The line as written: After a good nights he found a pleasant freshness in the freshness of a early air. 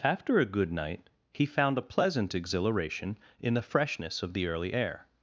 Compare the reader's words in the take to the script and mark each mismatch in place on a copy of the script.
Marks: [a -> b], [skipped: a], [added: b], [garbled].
After a good [nights -> night] he found a pleasant [freshness -> exhilaration] in the freshness of [a -> the] early air.